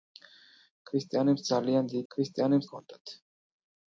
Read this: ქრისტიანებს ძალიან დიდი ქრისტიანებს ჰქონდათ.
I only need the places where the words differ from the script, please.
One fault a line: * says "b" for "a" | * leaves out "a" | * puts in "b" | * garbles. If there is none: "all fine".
all fine